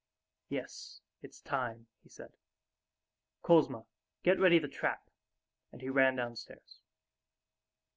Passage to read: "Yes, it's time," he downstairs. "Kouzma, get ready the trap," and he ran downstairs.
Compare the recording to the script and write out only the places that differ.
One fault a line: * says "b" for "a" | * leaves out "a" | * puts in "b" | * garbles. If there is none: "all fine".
* says "said" for "downstairs"